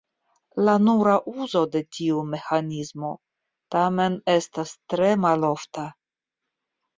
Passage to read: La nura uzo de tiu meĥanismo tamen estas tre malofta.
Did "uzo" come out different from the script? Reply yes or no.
no